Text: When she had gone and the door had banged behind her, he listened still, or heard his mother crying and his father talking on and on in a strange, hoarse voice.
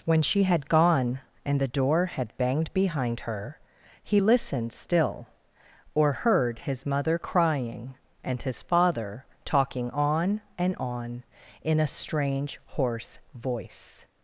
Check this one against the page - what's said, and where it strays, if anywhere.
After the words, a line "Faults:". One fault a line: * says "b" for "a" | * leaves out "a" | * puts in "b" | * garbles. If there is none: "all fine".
When she had gone and the door had banged behind her, he listened still, or heard his mother crying and his father talking on and on in a strange, hoarse voice.
Faults:
all fine